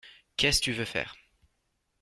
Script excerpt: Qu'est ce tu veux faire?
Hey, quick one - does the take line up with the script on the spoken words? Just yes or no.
yes